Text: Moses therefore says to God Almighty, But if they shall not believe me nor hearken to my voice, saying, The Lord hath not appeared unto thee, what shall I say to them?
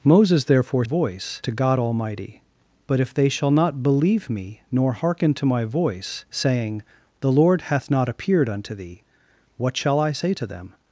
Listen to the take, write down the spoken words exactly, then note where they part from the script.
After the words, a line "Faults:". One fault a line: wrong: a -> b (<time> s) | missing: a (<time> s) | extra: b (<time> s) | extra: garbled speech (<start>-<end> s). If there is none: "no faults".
Moses therefore voice to God Almighty, But if they shall not believe me nor hearken to my voice, saying, The Lord hath not appeared unto thee, what shall I say to them?
Faults:
wrong: says -> voice (0.8 s)